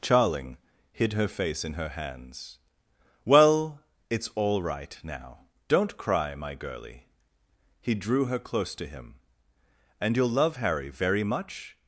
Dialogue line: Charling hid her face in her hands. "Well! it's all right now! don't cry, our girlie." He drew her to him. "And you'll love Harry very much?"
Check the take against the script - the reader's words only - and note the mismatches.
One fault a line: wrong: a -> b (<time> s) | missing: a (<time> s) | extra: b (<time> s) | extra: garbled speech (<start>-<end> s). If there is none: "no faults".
wrong: our -> my (6.3 s)
extra: close (8.4 s)